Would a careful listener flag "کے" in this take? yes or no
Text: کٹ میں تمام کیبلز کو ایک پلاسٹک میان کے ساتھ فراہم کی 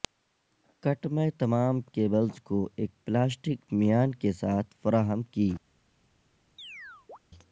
no